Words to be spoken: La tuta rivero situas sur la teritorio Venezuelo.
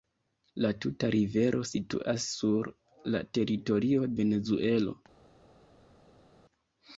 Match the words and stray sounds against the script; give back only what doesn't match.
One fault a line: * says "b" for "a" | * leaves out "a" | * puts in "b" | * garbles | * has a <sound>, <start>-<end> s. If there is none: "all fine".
all fine